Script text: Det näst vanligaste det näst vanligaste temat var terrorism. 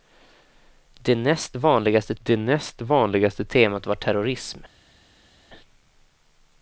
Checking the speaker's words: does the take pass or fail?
pass